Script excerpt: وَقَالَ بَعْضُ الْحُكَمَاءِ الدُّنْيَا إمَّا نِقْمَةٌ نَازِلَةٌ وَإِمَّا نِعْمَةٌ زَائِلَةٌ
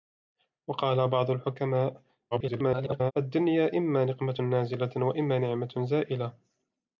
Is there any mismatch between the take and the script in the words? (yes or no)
yes